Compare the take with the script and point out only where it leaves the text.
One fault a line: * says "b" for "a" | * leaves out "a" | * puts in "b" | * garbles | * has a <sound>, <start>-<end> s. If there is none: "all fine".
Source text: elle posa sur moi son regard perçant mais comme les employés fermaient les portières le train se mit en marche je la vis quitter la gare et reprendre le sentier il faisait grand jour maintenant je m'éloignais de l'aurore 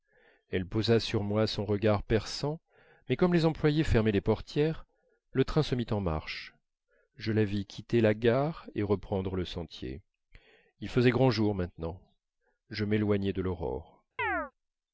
* has a chirp, 14.2-14.5 s